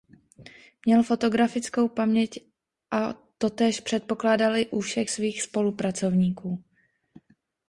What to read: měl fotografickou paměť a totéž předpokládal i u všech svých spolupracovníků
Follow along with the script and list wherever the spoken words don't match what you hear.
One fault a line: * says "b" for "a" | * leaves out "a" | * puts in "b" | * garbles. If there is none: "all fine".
all fine